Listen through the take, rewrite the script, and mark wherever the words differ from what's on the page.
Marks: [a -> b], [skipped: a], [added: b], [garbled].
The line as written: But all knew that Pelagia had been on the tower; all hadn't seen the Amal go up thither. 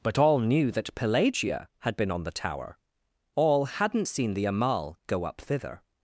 But all knew that Pelagia had been on the tower; all hadn't seen the Amal go up thither.